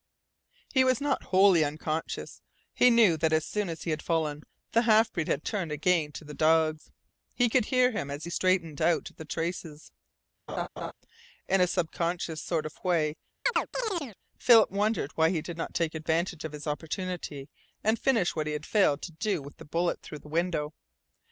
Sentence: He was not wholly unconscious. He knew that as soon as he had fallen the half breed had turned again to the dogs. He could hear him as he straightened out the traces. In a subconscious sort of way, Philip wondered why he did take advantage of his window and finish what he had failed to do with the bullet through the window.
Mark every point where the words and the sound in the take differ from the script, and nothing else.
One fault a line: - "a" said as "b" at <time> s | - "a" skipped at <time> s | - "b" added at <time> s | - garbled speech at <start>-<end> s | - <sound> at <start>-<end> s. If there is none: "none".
- laugh at 10.5-10.9 s
- chirp at 13.5-14.2 s
- "not" added at 15.6 s
- "window" said as "opportunity" at 16.7 s